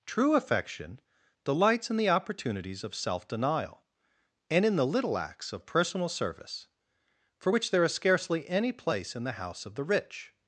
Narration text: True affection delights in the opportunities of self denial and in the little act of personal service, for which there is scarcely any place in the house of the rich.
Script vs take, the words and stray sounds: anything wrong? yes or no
yes